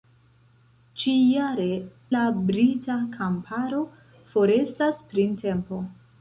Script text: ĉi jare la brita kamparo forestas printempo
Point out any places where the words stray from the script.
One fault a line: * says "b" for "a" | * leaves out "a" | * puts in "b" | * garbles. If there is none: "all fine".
all fine